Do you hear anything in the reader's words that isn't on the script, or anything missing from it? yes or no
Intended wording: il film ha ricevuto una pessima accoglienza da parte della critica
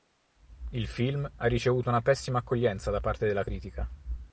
no